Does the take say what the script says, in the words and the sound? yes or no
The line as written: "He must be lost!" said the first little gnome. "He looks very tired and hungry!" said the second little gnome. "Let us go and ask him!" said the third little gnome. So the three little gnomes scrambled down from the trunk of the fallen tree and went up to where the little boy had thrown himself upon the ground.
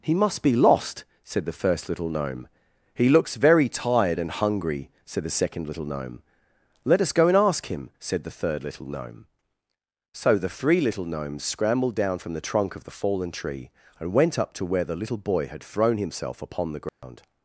no